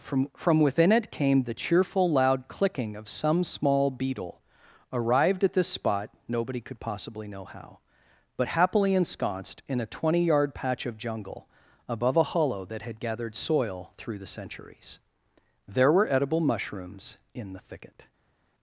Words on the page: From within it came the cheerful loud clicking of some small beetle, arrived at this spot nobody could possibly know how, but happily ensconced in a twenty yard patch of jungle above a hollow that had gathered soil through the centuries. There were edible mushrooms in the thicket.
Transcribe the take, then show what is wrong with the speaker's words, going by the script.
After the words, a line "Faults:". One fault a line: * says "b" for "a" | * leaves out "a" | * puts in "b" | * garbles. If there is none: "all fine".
From from within it came the cheerful loud clicking of some small beetle, arrived at this spot nobody could possibly know how, but happily ensconced in a twenty yard patch of jungle above a hollow that had gathered soil through the centuries. There were edible mushrooms in the thicket.
Faults:
* puts in "from"